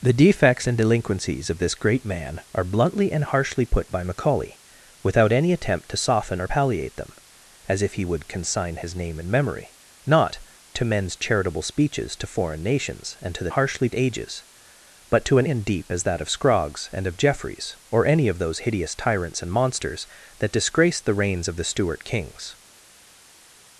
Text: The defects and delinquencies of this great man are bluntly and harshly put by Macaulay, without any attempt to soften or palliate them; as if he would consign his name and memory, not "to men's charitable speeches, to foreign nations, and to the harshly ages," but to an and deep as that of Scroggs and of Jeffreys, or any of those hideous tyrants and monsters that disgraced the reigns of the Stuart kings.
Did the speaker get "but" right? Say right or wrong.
right